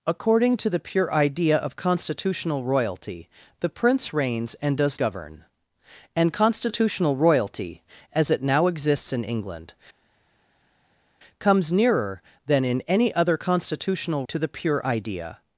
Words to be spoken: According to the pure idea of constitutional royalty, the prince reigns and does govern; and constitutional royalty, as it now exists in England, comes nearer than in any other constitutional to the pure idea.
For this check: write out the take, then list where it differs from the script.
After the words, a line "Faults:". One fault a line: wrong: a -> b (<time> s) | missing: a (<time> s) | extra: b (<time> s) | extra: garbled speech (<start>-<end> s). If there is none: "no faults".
According to the pure idea of constitutional royalty, the prince reigns and does govern; and constitutional royalty, as it now exists in England, comes nearer than in any other constitutional to the pure idea.
Faults:
no faults